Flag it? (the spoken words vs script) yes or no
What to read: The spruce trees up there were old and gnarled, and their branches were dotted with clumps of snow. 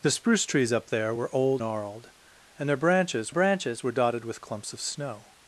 yes